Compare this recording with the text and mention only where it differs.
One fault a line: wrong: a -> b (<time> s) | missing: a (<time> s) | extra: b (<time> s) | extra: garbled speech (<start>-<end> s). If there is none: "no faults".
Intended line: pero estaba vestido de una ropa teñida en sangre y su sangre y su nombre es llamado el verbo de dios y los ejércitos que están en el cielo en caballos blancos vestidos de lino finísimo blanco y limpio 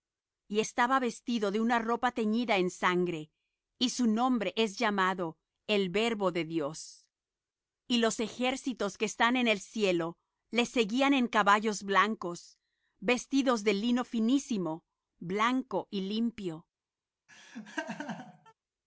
wrong: pero -> y (0.5 s)
missing: sangre y su (4.1 s)
extra: le seguían (10.5 s)